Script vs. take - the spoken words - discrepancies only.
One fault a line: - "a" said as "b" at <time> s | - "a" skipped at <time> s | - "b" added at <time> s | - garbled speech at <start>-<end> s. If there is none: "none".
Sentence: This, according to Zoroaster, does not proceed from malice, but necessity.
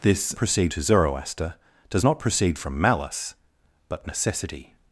- "according" said as "proceed" at 0.3 s